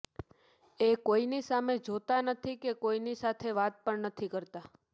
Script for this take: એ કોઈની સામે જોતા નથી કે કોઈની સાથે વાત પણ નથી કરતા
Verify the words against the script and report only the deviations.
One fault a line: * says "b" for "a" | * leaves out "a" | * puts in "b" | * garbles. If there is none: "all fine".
all fine